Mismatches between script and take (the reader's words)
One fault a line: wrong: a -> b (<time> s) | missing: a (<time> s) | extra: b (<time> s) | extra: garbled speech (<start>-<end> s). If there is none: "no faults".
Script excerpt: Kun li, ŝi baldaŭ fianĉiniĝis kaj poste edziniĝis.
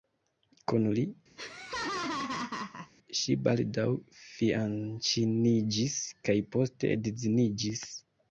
no faults